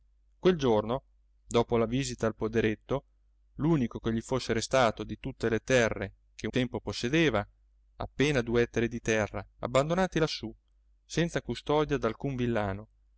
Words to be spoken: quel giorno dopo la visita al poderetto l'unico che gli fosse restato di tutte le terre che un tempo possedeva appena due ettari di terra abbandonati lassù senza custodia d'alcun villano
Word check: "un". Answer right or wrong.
wrong